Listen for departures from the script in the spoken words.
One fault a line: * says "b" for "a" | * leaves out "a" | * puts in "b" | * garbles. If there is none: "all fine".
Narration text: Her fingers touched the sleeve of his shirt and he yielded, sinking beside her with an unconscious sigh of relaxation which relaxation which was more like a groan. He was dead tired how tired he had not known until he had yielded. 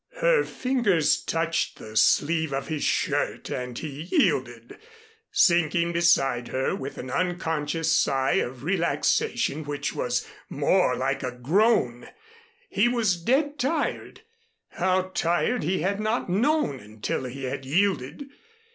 * leaves out "relaxation which"